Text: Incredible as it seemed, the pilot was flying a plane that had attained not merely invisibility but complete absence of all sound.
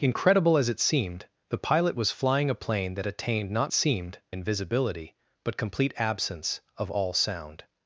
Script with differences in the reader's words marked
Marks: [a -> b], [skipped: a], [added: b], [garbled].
Incredible as it seemed, the pilot was flying a plane that [skipped: had] attained not [merely -> seemed] invisibility but complete absence of all sound.